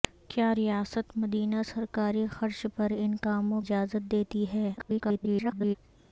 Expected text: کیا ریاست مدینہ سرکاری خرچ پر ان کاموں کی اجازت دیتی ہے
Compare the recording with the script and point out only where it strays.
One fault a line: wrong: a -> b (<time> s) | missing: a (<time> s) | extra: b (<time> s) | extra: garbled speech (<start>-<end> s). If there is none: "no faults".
missing: کی (3.6 s)
extra: garbled speech (4.8-5.8 s)